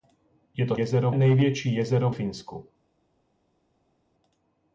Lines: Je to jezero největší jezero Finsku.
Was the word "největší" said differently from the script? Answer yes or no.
no